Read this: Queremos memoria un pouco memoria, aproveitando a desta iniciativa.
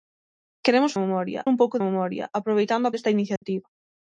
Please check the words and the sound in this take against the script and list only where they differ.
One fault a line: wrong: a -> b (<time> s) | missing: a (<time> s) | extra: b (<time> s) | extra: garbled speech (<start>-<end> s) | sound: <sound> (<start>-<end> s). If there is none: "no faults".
sound: dropout (3.4-3.4 s)